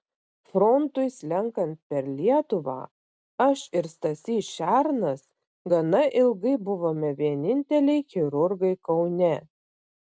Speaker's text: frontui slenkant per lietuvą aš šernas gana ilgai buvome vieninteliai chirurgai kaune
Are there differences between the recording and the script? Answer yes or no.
yes